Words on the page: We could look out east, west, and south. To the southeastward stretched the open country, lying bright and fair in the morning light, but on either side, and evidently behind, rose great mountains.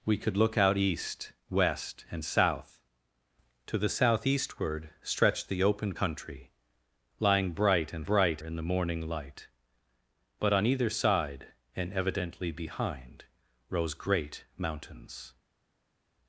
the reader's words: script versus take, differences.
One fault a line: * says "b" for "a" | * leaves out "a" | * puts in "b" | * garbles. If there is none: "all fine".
* says "bright" for "fair"